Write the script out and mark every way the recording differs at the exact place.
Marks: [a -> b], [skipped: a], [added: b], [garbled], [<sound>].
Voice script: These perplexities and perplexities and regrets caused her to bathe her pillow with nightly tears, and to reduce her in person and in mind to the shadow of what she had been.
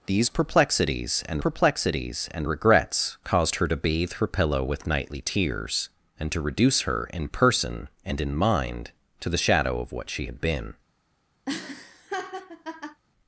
These perplexities and perplexities and regrets caused her to bathe her pillow with nightly tears, and to reduce her in person and in mind to the shadow of what she had been. [laugh]